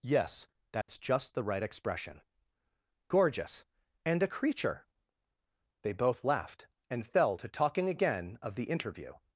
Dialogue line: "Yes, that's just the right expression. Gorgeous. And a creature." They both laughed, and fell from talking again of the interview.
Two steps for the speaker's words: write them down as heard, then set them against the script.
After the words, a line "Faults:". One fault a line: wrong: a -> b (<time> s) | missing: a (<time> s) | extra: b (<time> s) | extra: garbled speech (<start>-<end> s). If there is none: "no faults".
"Yes, that's just the right expression. Gorgeous. And a creature." They both laughed, and fell to talking again of the interview.
Faults:
wrong: from -> to (7.3 s)